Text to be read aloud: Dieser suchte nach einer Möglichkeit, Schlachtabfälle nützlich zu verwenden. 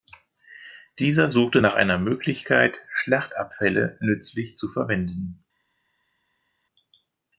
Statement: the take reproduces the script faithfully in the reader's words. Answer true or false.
true